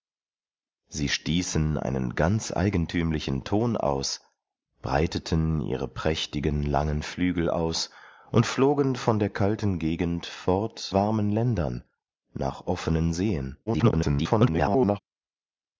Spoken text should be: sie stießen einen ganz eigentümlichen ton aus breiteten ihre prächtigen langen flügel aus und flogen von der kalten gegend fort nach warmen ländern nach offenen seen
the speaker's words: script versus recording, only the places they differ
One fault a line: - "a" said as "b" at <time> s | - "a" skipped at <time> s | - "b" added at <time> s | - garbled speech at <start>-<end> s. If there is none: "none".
- "nach" skipped at 10.9 s
- garbled speech at 13.7-15.0 s